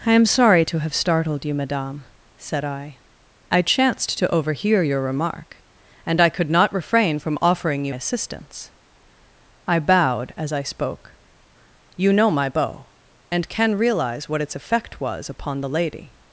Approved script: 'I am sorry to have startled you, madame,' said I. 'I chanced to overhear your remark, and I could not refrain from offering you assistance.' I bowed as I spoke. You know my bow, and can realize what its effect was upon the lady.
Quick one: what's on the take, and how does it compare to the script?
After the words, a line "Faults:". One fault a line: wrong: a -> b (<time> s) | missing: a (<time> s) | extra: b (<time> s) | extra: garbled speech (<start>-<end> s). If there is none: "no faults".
'I am sorry to have startled you, madame,' said I. 'I chanced to overhear your remark, and I could not refrain from offering you assistance.' I bowed as I spoke. You know my bow, and can realize what its effect was upon the lady.
Faults:
no faults